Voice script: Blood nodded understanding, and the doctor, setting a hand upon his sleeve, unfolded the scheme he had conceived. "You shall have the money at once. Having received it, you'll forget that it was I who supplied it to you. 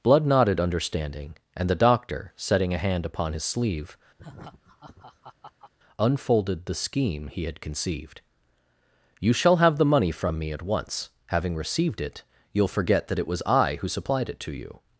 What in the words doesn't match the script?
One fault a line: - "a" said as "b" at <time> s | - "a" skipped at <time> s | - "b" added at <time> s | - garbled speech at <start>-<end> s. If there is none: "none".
- "from me" added at 10.1 s